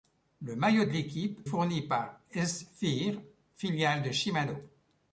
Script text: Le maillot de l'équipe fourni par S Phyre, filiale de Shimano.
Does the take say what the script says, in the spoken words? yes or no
yes